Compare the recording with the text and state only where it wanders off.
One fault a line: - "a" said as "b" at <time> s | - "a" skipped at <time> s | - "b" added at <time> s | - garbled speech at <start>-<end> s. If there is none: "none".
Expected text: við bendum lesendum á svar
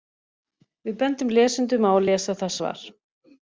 - "að lesa það" added at 1.9 s